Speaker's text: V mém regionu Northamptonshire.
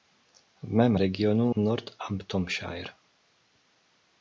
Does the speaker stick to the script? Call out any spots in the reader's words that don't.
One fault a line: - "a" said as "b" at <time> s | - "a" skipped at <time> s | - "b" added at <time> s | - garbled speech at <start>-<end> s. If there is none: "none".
none